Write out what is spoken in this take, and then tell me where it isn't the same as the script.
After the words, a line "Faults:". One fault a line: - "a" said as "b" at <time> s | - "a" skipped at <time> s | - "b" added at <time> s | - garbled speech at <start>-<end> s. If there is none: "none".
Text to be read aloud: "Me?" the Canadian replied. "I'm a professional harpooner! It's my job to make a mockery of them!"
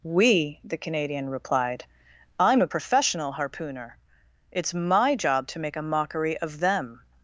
"We?" the Canadian replied. "I'm a professional harpooner! It's my job to make a mockery of them!"
Faults:
- "Me" said as "We" at 0.0 s